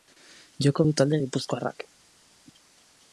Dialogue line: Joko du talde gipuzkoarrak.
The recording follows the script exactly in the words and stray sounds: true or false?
true